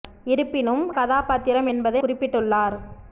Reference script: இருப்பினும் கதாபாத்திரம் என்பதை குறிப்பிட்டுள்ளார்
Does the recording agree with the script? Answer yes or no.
yes